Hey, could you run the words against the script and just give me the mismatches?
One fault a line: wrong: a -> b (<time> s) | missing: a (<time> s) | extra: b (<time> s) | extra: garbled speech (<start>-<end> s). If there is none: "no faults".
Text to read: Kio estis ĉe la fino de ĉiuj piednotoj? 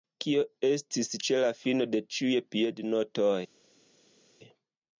no faults